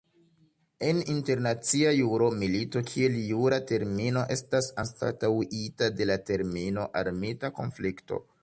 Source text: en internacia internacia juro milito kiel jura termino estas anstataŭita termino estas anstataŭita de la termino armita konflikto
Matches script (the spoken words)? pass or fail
fail